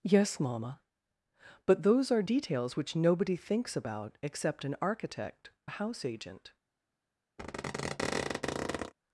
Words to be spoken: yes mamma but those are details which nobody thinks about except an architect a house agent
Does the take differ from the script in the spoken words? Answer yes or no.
no